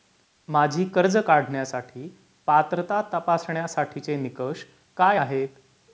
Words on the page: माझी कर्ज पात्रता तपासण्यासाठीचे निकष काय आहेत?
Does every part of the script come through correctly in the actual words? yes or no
no